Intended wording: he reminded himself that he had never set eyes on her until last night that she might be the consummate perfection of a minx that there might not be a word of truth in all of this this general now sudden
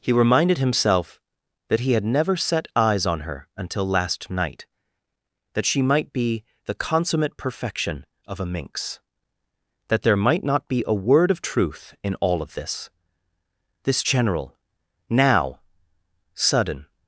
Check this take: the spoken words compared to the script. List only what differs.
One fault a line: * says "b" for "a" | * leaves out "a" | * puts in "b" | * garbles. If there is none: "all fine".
all fine